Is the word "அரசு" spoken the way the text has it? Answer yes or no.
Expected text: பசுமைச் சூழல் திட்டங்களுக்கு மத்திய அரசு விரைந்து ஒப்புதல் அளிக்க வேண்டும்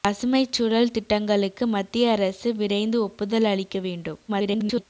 yes